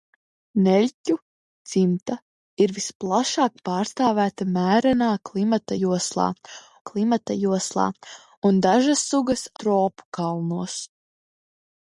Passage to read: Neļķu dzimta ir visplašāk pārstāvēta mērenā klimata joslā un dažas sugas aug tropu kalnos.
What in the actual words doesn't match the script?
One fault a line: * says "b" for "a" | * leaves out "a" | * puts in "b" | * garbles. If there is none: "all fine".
* puts in "klimata joslā"
* leaves out "aug"